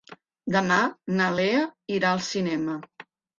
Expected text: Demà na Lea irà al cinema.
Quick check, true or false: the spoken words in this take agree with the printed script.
true